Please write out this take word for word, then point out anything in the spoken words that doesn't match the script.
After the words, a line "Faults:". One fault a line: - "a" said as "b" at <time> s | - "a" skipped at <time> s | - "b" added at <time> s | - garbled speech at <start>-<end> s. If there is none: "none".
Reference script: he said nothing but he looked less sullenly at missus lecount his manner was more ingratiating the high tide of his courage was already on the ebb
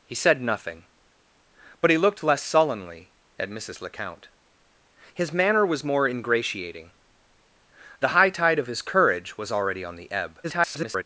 he said nothing but he looked less sullenly at missus lecount his manner was more ingratiating the high tide of his courage was already on the ebb [garbled]
Faults:
- garbled speech at 10.4-11.0 s